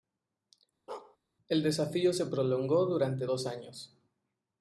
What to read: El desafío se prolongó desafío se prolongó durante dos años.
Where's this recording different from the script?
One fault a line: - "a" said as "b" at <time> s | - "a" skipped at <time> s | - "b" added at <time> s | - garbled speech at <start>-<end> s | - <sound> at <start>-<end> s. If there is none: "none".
- bark at 0.9-1.2 s
- "desafío se prolongó" skipped at 2.9 s